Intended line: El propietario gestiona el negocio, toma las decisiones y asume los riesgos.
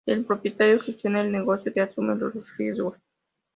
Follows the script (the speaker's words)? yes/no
no